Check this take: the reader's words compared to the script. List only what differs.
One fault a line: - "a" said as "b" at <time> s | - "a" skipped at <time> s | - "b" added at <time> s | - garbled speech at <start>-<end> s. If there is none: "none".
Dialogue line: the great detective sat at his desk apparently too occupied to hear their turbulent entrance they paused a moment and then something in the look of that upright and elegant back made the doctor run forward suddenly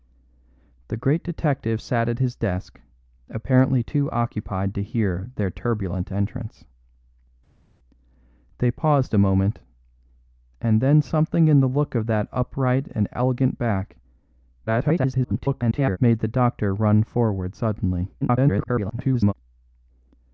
- garbled speech at 14.7-16.0 s
- garbled speech at 18.2-19.3 s